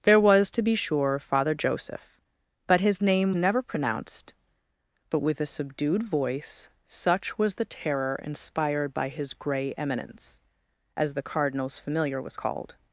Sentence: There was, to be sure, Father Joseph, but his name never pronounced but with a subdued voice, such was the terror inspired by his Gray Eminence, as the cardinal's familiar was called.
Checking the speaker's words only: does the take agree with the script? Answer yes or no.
yes